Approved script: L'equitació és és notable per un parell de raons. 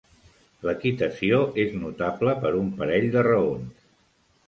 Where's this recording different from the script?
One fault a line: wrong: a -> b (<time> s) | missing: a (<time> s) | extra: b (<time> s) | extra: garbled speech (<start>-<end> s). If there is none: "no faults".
missing: és (1.8 s)